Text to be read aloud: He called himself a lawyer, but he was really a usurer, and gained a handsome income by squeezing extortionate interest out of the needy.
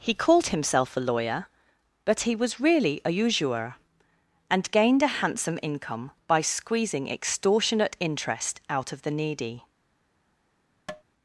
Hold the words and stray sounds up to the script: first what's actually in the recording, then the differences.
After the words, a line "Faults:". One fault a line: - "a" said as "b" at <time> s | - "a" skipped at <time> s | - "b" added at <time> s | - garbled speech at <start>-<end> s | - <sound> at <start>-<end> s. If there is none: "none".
He called himself a lawyer, but he was really a usurer, and gained a handsome income by squeezing extortionate interest out of the needy.
Faults:
- tap at 10.9-11.0 s